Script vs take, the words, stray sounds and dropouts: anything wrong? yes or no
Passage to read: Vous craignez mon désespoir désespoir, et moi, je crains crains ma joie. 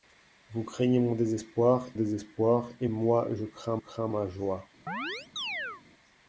yes